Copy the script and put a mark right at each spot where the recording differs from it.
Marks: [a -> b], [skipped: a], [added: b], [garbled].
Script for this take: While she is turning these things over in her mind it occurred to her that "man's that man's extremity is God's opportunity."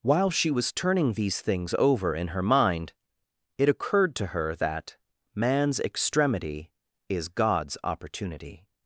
While she [is -> was] turning these things over in her mind it occurred to her that "man's [skipped: that man's] extremity is God's opportunity."